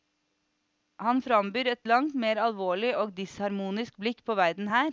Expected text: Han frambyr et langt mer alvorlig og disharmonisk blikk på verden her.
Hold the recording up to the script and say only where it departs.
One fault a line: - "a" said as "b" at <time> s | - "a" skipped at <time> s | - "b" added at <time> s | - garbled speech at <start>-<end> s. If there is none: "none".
none